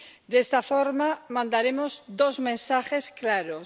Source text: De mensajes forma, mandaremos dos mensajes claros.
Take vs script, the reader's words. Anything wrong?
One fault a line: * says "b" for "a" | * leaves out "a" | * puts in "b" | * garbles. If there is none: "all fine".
* says "esta" for "mensajes"